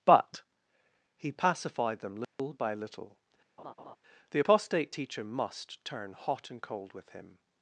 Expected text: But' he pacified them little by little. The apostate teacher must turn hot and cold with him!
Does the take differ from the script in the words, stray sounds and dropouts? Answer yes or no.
yes